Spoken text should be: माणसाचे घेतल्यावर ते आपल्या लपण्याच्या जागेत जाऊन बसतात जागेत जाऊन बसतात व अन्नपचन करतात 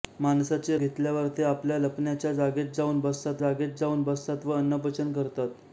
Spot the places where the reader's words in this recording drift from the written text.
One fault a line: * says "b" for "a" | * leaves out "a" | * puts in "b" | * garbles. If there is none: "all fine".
all fine